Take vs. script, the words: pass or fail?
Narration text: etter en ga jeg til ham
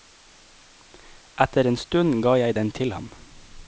fail